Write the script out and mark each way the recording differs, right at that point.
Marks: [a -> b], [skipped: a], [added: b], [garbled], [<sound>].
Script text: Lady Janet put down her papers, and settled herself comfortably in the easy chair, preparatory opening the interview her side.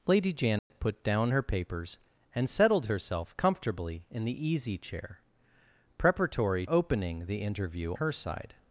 Lady Janet [dropout] put down her papers, and settled herself comfortably in the easy chair, preparatory opening the interview her side.